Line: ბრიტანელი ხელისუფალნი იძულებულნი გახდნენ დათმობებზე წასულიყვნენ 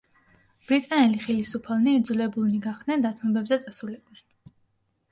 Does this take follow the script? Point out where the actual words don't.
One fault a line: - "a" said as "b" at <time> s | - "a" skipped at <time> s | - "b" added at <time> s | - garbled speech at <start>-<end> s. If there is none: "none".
none